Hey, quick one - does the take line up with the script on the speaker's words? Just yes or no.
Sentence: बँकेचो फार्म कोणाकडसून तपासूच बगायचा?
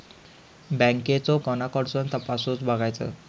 no